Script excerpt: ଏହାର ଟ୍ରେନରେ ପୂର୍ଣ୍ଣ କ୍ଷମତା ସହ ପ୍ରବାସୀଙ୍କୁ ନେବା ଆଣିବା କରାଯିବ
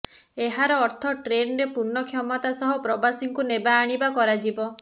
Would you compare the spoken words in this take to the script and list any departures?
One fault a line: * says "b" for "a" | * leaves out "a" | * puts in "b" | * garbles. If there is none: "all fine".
* puts in "ଅର୍ଥ"